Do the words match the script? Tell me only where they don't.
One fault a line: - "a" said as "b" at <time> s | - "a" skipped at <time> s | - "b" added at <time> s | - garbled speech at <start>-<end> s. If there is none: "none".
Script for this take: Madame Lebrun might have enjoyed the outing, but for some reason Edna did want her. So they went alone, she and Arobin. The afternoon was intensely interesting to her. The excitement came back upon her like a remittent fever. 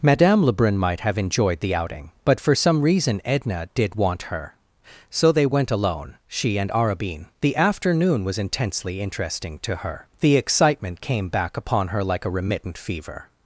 none